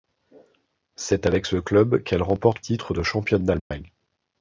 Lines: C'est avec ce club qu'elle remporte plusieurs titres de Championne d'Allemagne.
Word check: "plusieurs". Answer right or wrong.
wrong